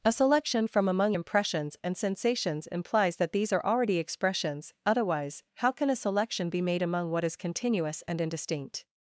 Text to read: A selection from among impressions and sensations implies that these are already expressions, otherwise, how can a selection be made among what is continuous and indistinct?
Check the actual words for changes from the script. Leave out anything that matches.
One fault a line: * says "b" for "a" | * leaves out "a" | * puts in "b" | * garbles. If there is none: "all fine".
all fine